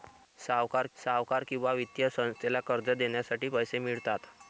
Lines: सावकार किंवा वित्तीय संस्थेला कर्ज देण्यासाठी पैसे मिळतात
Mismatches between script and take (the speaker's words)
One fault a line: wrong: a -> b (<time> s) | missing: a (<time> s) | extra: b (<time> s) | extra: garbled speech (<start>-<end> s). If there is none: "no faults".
extra: सावकार (1.0 s)